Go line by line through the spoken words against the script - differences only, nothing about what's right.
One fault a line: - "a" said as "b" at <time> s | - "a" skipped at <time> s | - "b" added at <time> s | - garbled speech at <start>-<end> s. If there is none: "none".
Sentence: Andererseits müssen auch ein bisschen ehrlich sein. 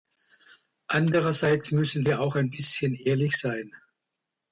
- "wir" added at 2.0 s